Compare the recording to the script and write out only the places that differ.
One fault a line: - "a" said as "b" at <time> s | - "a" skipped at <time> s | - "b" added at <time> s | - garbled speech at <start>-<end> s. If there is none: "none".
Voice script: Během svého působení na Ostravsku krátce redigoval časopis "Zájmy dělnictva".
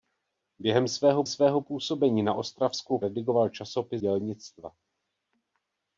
- "svého" added at 1.2 s
- "krátce" skipped at 3.0 s
- "Zájmy" skipped at 4.0 s